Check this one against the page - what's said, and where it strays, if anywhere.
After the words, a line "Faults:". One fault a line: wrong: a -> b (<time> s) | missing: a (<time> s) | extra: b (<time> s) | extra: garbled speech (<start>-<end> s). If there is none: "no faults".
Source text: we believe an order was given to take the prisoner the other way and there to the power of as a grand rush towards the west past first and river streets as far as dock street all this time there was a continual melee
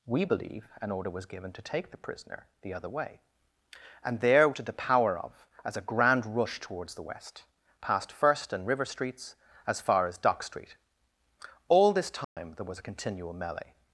we believe an order was given to take the prisoner the other way and there to the power of as a grand rush towards the west past first and river streets as far as dock street all this time there was a continual melee
Faults:
no faults